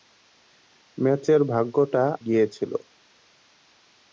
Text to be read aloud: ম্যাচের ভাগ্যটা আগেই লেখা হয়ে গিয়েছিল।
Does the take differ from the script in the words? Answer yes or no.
yes